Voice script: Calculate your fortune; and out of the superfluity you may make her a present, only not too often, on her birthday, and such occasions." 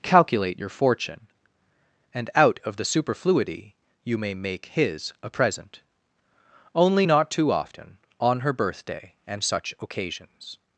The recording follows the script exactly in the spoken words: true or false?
false